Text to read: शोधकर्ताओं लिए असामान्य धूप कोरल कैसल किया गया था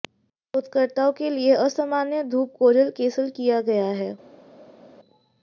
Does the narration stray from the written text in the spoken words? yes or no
yes